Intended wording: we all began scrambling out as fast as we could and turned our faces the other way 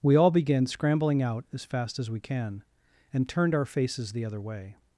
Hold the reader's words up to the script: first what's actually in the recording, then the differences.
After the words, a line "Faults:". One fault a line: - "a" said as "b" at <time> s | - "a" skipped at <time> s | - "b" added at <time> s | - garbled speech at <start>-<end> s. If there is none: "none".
we all began scrambling out as fast as we can and turned our faces the other way
Faults:
- "could" said as "can" at 2.2 s